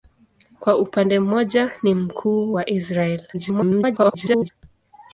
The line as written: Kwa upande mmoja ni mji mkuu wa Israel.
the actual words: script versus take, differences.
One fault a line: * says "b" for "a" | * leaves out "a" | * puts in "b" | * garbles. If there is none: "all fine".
* leaves out "mji"
* garbles